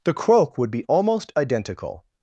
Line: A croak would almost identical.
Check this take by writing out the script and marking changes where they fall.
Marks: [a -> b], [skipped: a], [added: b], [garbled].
[A -> The] croak would [added: be] almost identical.